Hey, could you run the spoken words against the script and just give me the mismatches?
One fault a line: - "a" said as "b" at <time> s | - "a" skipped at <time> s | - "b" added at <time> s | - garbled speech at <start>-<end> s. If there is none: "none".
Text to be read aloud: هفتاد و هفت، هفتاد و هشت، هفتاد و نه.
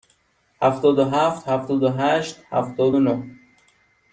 none